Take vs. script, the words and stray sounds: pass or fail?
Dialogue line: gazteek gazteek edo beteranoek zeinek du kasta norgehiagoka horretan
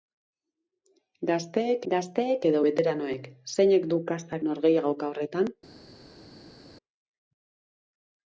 pass